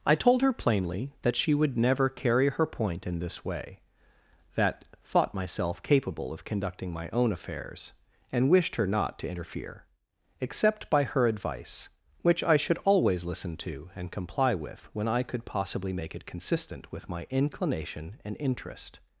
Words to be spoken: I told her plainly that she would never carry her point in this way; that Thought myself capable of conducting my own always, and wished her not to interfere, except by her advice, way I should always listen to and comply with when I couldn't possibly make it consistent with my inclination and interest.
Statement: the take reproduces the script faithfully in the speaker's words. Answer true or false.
false